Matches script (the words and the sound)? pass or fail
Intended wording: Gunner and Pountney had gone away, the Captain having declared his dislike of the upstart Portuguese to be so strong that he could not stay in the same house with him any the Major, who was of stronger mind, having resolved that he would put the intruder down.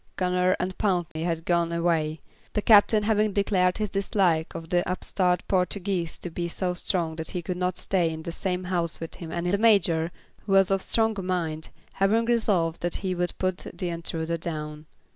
fail